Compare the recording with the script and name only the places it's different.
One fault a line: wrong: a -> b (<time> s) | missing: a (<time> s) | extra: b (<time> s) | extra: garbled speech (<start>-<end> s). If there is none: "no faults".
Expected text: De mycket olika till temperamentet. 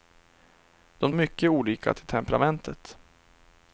no faults